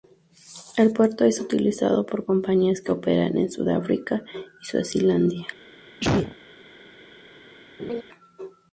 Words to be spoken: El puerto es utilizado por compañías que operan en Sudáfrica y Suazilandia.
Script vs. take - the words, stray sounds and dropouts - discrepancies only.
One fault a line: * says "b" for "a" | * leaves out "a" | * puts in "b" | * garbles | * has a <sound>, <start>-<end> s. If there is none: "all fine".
* has a sneeze, 6.0-6.4 s
* has a laugh, 7.8-8.0 s